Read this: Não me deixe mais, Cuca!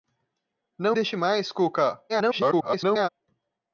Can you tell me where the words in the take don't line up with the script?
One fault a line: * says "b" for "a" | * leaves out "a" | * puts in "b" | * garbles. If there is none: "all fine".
* leaves out "me"
* garbles